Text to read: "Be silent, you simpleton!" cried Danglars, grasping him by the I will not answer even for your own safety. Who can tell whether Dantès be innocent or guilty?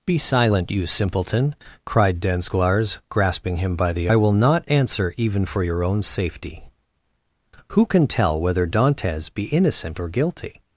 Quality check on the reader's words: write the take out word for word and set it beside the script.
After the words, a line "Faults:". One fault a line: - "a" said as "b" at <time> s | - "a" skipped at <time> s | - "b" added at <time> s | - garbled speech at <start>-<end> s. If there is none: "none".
"Be silent, you simpleton!" cried Danglars, grasping him by the I will not answer even for your own safety. Who can tell whether Dantès be innocent or guilty?
Faults:
none